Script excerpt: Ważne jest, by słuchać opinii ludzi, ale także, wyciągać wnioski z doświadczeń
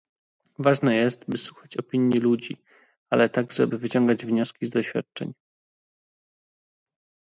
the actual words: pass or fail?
fail